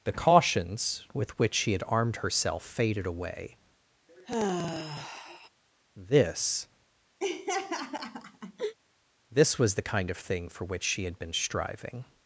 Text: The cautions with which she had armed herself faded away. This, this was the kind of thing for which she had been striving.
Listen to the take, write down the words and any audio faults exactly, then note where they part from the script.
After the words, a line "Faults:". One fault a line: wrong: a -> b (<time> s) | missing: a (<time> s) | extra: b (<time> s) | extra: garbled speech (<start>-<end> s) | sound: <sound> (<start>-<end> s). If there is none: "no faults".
The cautions with which she had armed herself faded away. This, this was the kind of thing for which she had been striving.
Faults:
sound: sigh (4.1-5.5 s)
sound: laugh (7.2-8.7 s)